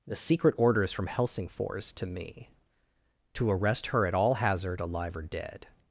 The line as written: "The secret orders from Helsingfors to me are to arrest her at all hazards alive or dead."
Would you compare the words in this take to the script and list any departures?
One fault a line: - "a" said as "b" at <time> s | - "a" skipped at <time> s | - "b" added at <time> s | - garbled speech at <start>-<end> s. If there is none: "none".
- "are" skipped at 2.5 s
- "hazards" said as "hazard" at 4.3 s